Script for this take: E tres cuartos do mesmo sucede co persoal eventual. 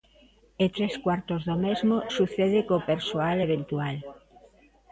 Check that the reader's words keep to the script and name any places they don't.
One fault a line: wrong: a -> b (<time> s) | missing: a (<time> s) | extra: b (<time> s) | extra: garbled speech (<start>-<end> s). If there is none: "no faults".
no faults